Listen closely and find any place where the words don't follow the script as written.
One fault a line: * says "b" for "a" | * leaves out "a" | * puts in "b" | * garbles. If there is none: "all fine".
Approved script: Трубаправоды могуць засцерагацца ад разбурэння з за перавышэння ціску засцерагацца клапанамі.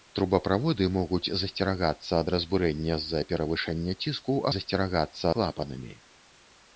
all fine